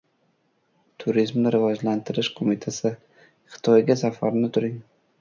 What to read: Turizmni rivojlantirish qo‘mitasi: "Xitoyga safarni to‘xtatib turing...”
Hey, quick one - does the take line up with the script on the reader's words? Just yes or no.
no